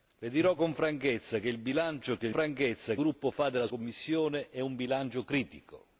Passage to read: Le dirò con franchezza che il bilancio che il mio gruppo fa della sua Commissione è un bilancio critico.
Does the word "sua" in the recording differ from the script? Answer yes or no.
yes